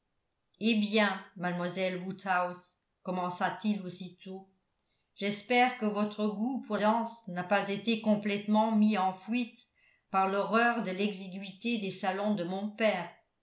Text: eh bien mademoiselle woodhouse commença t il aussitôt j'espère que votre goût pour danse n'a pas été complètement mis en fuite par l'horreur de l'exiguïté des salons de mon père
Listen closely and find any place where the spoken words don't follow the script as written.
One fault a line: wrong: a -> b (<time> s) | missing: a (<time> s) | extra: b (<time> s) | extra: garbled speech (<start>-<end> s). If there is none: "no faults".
no faults